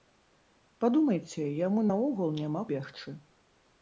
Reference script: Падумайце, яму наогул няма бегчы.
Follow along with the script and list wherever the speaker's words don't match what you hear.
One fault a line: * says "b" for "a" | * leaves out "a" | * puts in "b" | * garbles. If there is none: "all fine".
all fine